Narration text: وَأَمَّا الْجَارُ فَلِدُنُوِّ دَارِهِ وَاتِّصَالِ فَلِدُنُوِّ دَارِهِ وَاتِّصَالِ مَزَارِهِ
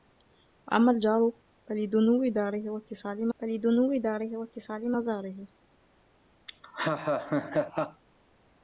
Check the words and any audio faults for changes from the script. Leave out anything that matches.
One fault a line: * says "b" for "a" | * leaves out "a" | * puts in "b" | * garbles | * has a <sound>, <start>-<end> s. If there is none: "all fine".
* has a laugh, 6.5-8.0 s